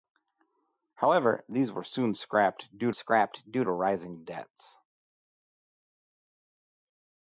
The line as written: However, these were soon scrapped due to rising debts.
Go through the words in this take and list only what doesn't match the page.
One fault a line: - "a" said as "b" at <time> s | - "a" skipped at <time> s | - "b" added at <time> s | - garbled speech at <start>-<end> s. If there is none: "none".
- "scrapped due" added at 2.9 s